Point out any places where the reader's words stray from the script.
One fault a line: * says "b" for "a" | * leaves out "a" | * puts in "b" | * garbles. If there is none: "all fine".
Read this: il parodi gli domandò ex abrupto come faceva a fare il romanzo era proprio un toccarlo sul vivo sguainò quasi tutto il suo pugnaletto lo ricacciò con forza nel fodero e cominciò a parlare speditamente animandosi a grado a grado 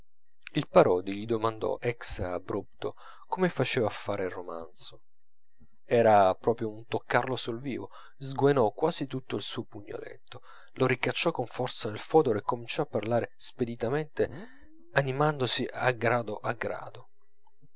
all fine